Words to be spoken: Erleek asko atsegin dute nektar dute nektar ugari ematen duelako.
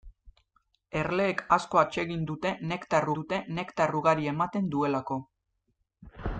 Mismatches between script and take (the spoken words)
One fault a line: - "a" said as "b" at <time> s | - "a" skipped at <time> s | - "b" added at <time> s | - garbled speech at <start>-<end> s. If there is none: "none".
none